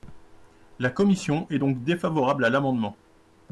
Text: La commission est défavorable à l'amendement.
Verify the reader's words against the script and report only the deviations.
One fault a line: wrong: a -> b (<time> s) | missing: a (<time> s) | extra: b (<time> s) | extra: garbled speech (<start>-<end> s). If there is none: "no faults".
extra: donc (1.6 s)